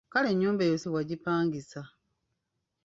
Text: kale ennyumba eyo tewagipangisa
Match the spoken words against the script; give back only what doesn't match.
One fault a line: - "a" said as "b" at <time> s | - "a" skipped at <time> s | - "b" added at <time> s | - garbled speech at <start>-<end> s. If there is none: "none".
none